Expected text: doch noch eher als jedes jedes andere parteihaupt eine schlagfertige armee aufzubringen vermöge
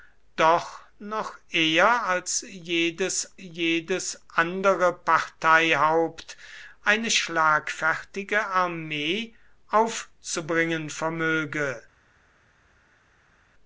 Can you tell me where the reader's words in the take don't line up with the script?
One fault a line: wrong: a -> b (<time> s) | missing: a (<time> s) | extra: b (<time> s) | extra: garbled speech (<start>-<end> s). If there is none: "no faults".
no faults